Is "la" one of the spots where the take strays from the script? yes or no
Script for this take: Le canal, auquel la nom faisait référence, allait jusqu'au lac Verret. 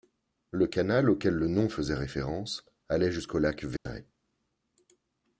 yes